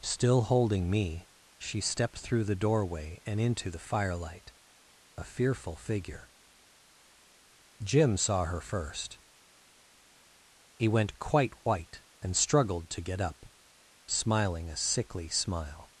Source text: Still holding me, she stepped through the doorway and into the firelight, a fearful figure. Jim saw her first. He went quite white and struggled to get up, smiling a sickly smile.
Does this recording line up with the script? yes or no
yes